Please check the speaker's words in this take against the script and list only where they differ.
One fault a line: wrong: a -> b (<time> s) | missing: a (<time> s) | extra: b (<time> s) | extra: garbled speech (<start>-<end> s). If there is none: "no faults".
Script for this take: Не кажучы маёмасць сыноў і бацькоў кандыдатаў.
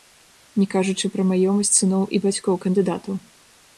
extra: пра (1.1 s)